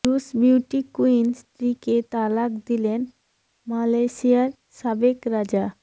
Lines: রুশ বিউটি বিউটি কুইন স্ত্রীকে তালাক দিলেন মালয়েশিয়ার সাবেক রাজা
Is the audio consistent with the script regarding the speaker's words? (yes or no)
no